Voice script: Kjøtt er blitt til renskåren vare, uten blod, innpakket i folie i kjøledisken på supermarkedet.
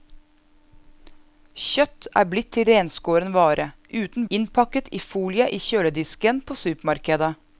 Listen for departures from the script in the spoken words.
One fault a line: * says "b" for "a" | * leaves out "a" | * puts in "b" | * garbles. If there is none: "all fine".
* leaves out "blod"